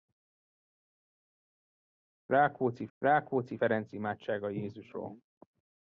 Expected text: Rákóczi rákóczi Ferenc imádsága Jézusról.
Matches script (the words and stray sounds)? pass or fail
pass